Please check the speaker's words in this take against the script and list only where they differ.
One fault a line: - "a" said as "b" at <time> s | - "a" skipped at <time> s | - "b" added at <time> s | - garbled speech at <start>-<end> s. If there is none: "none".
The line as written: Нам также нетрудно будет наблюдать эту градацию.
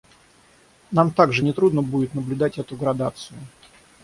none